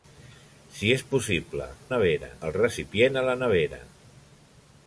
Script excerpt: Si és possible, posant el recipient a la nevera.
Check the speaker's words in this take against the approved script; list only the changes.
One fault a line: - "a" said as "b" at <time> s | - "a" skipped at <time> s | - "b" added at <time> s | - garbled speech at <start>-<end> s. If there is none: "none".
- "posant" said as "nevera" at 2.0 s